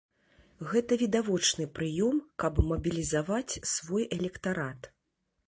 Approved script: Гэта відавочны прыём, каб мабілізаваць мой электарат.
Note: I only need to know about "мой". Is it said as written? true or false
false